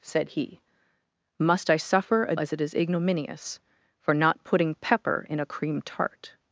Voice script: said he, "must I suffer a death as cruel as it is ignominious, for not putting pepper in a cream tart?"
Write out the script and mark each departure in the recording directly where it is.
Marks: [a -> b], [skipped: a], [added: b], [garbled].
said he, "must I suffer a [skipped: death as cruel] as it is ignominious, for not putting pepper in a cream tart?"